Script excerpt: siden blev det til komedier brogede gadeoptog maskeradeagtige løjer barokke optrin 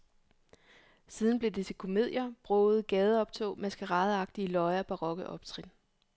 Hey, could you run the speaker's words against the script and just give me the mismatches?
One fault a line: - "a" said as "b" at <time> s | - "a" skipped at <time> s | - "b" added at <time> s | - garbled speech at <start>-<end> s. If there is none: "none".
none